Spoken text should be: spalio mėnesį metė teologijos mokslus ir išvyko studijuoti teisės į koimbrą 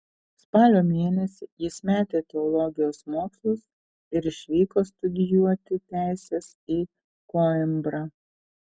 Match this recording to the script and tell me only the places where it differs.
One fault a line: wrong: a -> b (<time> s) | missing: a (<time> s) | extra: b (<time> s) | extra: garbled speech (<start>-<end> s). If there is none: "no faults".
extra: jis (1.6 s)